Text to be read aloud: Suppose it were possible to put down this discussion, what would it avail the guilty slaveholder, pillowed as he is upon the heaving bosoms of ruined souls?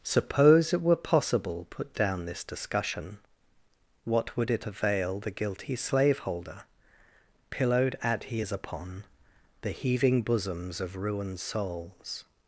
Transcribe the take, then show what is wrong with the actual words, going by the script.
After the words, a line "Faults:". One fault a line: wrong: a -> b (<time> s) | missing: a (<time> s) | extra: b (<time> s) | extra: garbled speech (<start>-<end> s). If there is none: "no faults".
Suppose it were possible put down this discussion, what would it avail the guilty slaveholder, pillowed at he is upon the heaving bosoms of ruined souls?
Faults:
missing: to (1.7 s)
wrong: as -> at (8.0 s)